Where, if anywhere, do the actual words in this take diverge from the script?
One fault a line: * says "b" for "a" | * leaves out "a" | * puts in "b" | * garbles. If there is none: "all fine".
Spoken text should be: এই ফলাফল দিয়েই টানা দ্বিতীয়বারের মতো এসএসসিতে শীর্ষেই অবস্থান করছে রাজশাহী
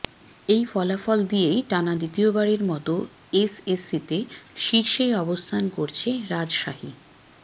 all fine